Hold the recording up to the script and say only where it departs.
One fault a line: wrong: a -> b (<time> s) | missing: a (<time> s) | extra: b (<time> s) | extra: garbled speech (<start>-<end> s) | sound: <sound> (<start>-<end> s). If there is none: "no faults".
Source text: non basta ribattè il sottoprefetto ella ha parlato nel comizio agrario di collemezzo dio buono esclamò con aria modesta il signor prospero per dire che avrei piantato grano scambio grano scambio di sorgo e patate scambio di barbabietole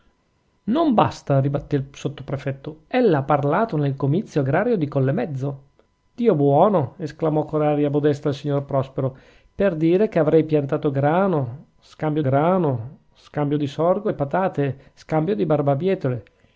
no faults